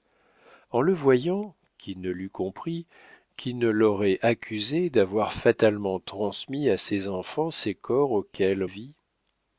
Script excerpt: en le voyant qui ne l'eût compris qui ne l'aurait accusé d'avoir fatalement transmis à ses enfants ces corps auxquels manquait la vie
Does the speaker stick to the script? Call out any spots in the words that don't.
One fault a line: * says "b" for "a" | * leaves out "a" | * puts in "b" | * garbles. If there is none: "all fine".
* leaves out "manquait la"